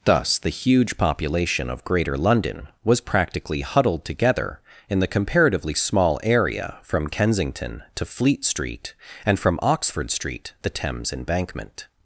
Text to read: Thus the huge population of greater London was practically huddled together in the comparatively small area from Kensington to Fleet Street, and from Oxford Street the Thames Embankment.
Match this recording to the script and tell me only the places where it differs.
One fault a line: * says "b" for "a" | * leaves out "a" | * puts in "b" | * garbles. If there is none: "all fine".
all fine